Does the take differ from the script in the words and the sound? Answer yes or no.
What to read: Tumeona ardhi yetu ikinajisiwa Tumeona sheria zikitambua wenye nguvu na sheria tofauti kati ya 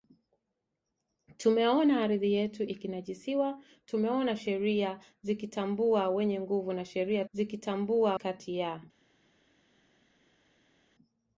yes